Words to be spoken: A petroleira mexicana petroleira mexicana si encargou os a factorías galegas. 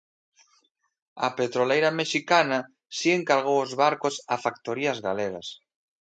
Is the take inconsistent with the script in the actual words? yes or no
yes